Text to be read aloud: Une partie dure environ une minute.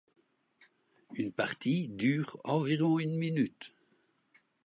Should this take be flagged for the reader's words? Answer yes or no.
no